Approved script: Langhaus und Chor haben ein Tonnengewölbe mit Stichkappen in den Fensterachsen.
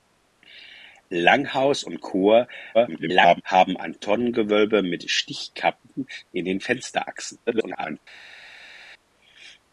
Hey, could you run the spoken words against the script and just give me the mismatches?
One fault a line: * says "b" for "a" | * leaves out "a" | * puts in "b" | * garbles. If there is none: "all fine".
* garbles
* garbles